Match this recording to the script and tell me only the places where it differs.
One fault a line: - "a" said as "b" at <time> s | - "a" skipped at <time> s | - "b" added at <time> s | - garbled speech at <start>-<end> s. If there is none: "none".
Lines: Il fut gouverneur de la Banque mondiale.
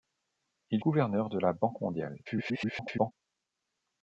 - "fut" skipped at 0.8 s
- garbled speech at 2.3-3.1 s